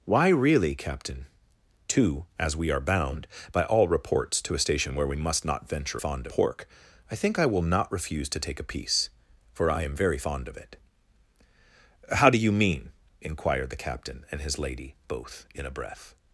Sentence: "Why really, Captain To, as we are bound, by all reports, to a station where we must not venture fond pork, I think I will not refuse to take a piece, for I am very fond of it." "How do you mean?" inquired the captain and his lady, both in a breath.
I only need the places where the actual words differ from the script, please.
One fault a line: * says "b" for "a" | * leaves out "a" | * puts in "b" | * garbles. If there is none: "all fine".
all fine